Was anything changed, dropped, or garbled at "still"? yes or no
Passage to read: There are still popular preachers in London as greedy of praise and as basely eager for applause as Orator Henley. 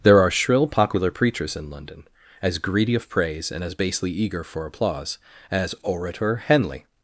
yes